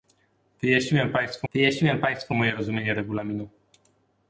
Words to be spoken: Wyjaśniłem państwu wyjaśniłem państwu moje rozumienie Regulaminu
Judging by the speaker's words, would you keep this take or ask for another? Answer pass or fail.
pass